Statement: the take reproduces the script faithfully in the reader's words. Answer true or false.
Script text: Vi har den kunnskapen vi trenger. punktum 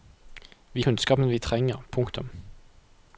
false